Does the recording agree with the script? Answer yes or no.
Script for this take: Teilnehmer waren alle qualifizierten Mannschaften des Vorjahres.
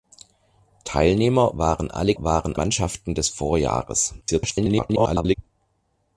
no